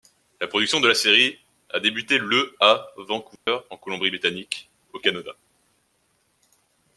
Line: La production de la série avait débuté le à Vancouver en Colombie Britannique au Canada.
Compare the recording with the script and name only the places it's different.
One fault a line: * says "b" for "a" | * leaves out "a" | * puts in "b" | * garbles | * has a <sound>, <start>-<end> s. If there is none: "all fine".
* says "a" for "avait"
* has a dropout, 3.4-3.5 s